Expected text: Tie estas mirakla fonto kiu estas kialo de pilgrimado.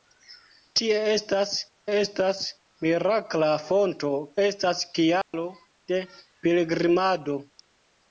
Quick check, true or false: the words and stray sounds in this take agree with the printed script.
false